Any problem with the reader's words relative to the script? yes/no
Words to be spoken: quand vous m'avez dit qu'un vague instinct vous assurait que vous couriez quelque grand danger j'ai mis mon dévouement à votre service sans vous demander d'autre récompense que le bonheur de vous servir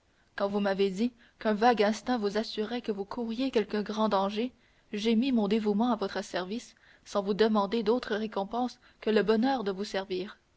no